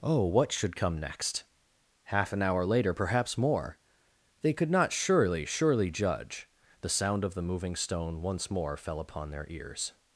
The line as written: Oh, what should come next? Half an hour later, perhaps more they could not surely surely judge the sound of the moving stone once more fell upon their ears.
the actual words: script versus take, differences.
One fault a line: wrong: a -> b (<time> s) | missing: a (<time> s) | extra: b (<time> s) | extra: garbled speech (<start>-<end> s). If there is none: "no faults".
no faults